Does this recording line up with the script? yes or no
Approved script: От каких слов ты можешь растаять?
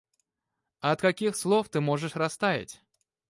yes